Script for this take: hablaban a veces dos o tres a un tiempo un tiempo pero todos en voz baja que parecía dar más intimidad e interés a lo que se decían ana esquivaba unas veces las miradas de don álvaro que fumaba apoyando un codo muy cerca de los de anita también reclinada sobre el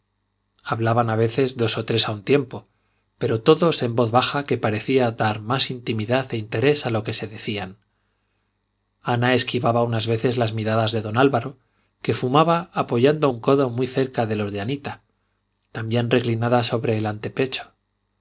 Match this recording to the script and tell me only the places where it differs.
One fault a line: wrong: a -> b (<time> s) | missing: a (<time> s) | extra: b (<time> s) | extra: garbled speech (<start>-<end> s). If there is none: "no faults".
missing: un tiempo (2.6 s)